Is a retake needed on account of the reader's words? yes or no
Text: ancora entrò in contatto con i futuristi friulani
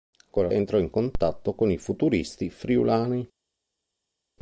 no